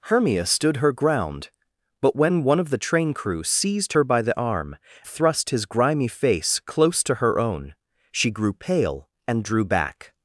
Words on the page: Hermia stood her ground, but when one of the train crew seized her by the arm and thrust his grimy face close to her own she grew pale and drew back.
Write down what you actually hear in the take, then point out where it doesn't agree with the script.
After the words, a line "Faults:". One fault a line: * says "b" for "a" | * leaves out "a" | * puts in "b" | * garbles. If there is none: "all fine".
Hermia stood her ground, but when one of the train crew seized her by the arm thrust his grimy face close to her own she grew pale and drew back.
Faults:
* leaves out "and"